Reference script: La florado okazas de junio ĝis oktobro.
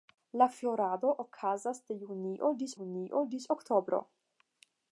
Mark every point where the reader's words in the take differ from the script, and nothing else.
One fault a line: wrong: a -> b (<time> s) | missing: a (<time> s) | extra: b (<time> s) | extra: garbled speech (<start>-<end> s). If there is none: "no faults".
extra: junio ĝis (2.8 s)